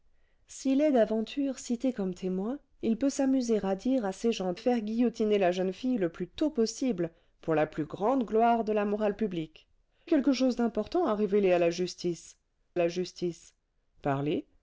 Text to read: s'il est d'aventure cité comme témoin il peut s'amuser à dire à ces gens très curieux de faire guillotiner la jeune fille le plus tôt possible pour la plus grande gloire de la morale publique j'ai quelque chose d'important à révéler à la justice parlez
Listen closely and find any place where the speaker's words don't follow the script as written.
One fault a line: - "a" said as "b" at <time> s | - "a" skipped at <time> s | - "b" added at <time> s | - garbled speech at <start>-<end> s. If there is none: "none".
- "très curieux de" skipped at 4.5 s
- "j'ai" skipped at 9.7 s
- "la justice" added at 12.8 s